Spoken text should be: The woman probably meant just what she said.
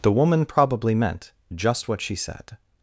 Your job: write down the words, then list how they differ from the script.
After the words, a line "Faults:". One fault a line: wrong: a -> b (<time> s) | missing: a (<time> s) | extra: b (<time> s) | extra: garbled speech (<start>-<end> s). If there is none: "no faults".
The woman probably meant just what she said.
Faults:
no faults